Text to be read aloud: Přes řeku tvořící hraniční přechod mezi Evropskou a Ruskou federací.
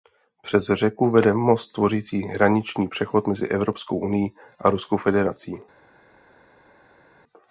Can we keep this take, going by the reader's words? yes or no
no